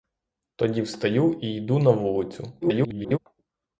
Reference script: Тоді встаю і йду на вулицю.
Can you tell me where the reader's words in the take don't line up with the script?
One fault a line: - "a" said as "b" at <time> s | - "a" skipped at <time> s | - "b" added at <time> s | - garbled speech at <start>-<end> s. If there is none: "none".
- garbled speech at 2.6-3.2 s